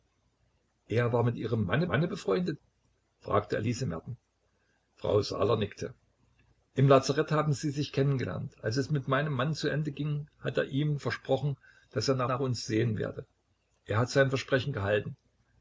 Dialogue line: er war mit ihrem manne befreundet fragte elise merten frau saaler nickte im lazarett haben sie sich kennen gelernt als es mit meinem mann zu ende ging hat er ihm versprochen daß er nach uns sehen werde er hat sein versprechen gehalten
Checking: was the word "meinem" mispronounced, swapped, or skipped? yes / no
no